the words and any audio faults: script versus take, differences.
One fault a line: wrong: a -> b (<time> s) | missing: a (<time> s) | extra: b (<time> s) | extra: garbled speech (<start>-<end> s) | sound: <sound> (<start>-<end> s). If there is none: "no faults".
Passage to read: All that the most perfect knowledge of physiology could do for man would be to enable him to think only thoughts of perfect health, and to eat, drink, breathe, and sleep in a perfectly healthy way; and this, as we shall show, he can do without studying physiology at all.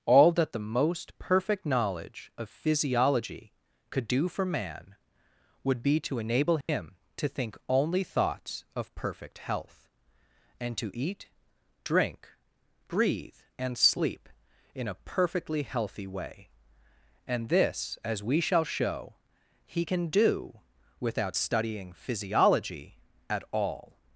sound: dropout (6.6-6.7 s)